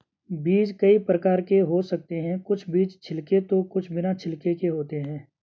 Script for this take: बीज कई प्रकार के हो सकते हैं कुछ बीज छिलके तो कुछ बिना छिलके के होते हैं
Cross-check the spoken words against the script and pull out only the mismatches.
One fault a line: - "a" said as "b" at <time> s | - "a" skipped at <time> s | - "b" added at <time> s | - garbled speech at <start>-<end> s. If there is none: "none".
none